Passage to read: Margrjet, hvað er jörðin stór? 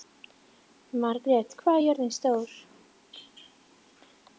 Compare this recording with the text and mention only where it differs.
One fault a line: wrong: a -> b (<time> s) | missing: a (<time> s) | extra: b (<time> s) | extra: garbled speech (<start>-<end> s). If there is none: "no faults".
no faults